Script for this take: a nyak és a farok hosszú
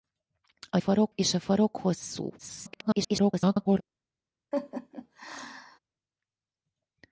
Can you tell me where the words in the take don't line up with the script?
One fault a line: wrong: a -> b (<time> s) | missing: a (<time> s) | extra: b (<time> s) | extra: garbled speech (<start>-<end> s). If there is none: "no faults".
wrong: nyak -> farok (0.8 s)
extra: garbled speech (2.4-3.8 s)